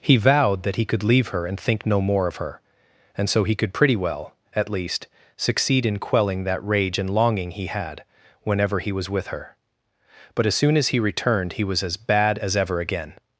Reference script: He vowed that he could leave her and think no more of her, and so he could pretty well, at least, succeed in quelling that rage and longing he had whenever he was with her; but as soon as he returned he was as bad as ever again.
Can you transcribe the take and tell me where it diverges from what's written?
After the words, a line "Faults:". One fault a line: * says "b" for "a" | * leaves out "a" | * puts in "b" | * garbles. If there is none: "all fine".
He vowed that he could leave her and think no more of her, and so he could pretty well, at least, succeed in quelling that rage and longing he had whenever he was with her; but as soon as he returned he was as bad as ever again.
Faults:
all fine